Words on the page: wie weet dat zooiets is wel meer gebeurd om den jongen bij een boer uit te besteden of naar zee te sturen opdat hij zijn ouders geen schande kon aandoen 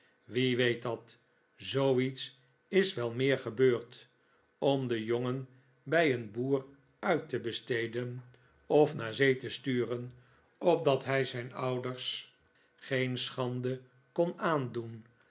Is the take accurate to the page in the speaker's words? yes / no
yes